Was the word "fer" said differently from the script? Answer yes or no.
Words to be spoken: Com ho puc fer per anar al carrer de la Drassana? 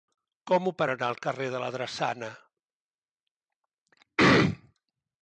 yes